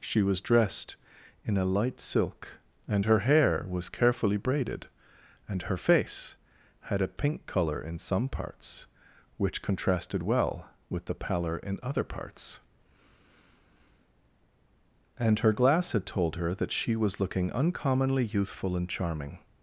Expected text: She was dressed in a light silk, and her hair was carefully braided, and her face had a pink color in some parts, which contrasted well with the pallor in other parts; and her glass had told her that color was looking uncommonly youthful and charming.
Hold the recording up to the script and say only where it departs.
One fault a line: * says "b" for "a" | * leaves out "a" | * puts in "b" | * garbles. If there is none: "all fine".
* says "she" for "color"